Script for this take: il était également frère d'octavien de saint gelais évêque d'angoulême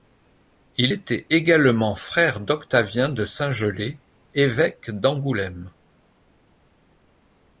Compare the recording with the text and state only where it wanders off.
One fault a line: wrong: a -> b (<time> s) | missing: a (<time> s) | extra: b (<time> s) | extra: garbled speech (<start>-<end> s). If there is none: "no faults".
no faults